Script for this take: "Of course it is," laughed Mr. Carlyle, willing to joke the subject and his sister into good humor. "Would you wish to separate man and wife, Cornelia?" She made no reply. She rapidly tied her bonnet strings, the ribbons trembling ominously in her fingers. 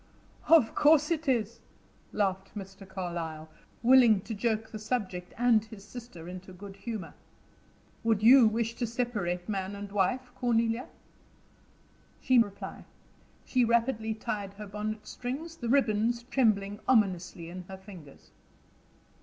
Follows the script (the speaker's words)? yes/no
no